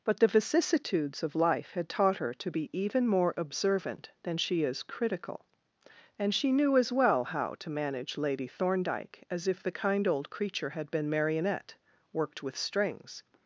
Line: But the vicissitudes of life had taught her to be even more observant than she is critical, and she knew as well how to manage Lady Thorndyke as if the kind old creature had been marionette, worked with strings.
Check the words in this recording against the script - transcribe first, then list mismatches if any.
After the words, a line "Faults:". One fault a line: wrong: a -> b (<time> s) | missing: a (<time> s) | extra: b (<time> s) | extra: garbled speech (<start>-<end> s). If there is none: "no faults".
But the vicissitudes of life had taught her to be even more observant than she is critical, and she knew as well how to manage Lady Thorndyke as if the kind old creature had been marionette, worked with strings.
Faults:
no faults